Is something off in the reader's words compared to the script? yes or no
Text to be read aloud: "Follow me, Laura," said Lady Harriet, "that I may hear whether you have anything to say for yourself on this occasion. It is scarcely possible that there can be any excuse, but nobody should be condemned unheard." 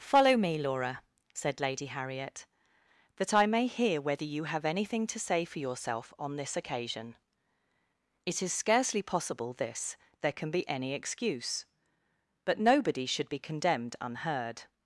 yes